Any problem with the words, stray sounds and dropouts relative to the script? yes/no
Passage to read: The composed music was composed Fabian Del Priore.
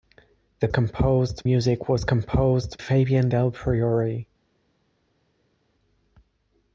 no